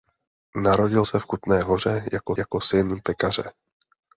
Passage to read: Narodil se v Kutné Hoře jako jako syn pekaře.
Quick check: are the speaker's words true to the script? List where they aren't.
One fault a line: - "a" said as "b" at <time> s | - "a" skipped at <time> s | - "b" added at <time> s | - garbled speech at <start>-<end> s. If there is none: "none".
none